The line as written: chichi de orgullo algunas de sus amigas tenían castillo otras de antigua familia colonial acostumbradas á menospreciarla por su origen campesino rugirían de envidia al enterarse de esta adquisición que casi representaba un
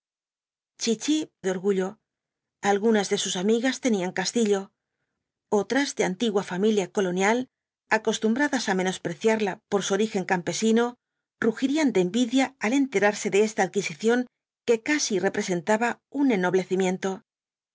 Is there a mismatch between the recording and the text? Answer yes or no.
no